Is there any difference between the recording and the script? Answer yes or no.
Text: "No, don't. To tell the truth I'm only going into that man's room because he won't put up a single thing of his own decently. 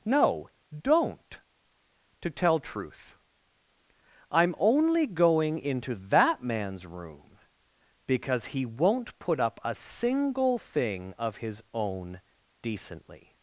yes